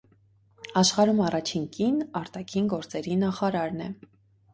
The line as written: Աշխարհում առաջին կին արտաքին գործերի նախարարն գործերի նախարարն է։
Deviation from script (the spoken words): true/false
true